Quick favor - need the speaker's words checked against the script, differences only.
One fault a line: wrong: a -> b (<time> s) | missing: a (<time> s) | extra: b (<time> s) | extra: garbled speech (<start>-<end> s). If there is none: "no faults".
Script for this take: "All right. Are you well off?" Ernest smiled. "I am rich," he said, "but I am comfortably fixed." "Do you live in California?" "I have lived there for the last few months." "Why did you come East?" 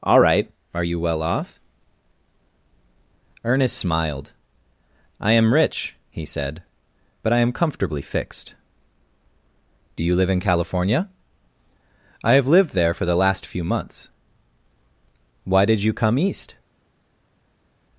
no faults